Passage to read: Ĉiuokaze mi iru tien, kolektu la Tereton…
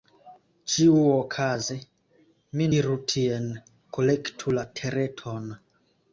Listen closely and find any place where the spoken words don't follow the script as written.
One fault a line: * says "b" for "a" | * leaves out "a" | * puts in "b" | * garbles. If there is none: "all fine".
all fine